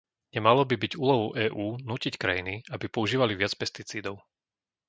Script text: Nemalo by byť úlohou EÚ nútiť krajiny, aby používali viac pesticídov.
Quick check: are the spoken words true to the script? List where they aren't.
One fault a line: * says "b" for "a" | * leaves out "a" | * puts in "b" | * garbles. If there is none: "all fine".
all fine